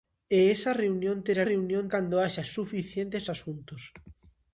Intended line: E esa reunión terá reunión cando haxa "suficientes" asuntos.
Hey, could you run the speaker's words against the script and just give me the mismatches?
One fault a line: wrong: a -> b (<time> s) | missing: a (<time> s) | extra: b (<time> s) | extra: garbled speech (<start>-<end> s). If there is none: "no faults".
no faults